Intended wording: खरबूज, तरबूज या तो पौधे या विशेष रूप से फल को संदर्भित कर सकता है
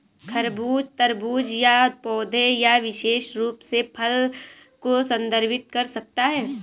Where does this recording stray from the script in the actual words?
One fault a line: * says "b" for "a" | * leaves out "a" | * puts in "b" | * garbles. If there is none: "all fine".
* leaves out "तो"